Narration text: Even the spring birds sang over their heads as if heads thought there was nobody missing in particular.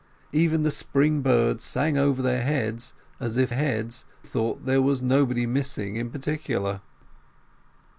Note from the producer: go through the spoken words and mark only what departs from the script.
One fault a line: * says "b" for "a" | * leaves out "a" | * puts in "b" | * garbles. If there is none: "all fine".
all fine